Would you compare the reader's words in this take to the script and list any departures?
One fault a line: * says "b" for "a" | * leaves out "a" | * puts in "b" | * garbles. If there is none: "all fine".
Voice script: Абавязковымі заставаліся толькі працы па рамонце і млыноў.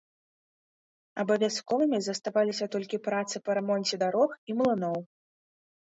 * puts in "дарог"